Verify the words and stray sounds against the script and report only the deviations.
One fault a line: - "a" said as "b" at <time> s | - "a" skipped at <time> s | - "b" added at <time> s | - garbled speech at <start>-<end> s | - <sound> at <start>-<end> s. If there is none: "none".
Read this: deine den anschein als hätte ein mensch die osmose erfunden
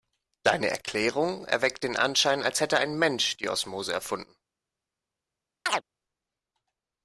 - "erklärung erweckt" added at 0.7 s
- chirp at 5.7-5.8 s